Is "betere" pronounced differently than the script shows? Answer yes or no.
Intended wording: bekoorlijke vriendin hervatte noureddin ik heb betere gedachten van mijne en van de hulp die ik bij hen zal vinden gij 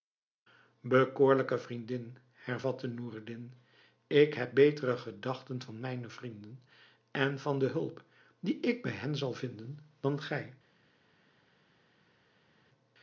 no